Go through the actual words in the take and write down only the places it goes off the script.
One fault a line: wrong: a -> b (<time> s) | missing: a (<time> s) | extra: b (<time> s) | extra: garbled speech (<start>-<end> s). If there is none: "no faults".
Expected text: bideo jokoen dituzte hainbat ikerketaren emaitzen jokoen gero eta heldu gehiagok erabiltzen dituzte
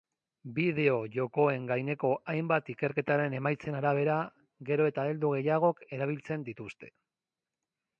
wrong: dituzte -> gaineko (1.7 s)
wrong: jokoen -> arabera (3.8 s)